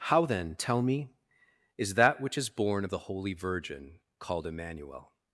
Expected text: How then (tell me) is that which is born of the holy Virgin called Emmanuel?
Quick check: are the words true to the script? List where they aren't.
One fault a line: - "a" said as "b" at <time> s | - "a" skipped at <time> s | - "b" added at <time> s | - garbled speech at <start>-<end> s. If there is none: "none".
none